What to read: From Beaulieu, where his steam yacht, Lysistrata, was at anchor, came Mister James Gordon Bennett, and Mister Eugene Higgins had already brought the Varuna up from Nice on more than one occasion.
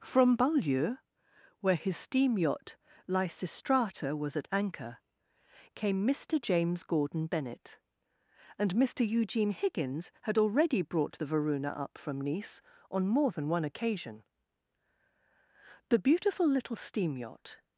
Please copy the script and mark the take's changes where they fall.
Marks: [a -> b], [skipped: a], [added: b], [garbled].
From Beaulieu, where his steam yacht, Lysistrata, was at anchor, came Mister James Gordon Bennett, and Mister Eugene Higgins had already brought the Varuna up from Nice on more than one occasion. [added: The beautiful little steam yacht]